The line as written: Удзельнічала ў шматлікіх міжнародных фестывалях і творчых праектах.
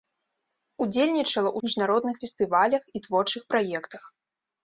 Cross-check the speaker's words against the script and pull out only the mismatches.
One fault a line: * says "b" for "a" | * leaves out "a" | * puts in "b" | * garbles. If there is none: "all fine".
* leaves out "шматлікіх"